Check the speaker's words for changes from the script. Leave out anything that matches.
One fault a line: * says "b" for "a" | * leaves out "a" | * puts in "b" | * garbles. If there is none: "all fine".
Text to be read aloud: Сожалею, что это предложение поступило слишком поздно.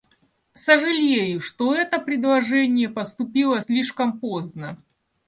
all fine